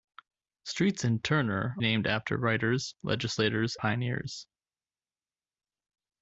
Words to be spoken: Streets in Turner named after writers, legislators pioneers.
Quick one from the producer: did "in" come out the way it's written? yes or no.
yes